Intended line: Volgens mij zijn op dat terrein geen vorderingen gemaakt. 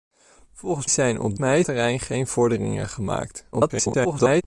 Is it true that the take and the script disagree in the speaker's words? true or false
true